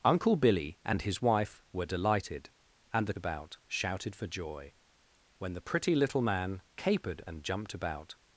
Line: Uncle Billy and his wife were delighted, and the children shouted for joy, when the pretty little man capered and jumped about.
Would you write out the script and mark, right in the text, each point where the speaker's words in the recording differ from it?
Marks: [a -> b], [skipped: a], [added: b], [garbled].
Uncle Billy and his wife were delighted, and the [children -> about] shouted for joy, when the pretty little man capered and jumped about.